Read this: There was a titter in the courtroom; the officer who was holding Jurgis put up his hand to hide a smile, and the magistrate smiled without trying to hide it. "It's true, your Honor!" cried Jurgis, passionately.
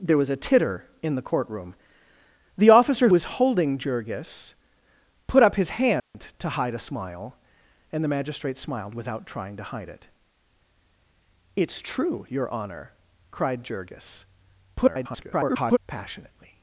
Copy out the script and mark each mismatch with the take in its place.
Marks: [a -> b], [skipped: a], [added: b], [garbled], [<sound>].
There was a titter in the courtroom; the officer [skipped: who] was holding Jurgis put up his hand [dropout] to hide a smile, and the magistrate smiled without trying to hide it. "It's true, your Honor!" cried Jurgis, [garbled] passionately.